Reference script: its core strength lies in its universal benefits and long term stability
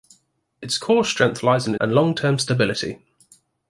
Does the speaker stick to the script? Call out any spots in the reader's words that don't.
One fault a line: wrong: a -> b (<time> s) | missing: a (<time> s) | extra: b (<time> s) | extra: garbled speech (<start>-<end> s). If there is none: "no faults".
missing: its universal benefits (1.7 s)